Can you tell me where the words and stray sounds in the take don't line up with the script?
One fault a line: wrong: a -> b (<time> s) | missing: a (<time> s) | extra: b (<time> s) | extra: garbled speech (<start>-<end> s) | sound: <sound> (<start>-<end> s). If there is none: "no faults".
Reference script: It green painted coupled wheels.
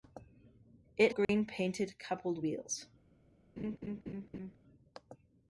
sound: dropout (1.2-1.3 s)
sound: laugh (3.6-4.6 s)